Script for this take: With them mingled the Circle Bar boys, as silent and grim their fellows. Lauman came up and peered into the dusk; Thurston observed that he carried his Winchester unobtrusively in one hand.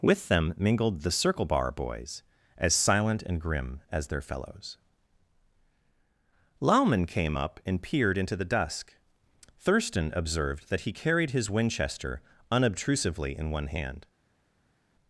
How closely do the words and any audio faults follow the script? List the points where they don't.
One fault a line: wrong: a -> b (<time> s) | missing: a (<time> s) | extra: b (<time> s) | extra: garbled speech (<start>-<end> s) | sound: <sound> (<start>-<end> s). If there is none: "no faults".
extra: as (3.9 s)